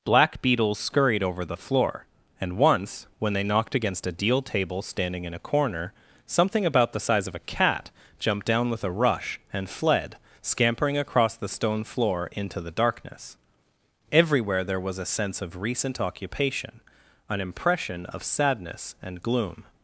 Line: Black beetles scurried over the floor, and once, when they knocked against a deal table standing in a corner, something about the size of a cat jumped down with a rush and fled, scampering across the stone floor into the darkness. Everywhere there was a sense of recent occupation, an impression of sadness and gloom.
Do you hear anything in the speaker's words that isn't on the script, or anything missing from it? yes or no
no